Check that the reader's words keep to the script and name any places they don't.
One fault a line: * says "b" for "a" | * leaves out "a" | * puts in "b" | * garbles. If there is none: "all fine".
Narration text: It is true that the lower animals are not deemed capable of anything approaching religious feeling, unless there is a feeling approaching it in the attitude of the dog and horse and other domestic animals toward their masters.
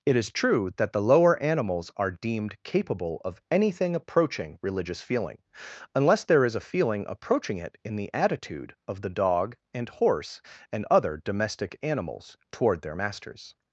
* leaves out "not"